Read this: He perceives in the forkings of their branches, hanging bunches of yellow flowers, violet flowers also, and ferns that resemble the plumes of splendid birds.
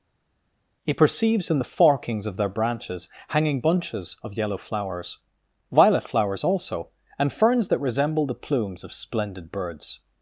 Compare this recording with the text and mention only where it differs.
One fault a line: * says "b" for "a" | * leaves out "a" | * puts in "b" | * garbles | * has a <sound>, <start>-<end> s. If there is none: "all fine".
all fine